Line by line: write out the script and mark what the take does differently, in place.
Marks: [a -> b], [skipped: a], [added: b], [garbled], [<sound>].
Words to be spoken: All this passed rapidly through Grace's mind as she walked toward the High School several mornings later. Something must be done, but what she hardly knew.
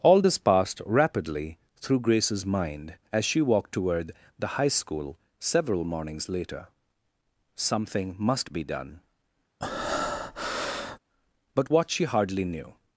All this passed rapidly through Grace's mind as she walked toward the High School several mornings later. Something must be done, [breath] but what she hardly knew.